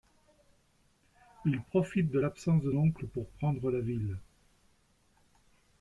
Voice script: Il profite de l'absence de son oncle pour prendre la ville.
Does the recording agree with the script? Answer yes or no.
no